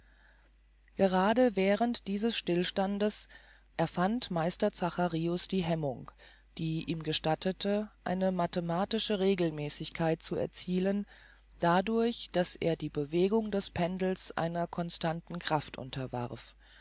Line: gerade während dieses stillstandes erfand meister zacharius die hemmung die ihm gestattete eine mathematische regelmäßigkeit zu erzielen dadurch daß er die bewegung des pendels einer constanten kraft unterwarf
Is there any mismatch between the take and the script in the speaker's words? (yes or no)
no